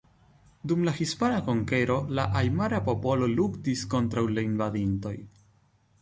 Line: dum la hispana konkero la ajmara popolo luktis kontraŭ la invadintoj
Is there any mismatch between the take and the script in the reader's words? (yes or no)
no